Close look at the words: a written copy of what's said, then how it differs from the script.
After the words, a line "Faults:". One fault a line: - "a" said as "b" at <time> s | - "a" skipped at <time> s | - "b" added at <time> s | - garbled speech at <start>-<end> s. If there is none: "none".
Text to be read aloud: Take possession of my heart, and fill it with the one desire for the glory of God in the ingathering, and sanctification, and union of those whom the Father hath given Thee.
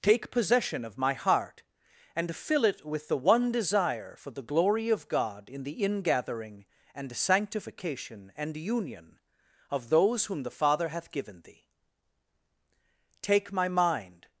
Take possession of my heart, and fill it with the one desire for the glory of God in the ingathering, and sanctification, and union of those whom the Father hath given Thee. Take my mind
Faults:
- "Take my mind" added at 13.2 s